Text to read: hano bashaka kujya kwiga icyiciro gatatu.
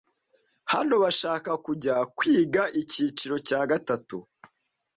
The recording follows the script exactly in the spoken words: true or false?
false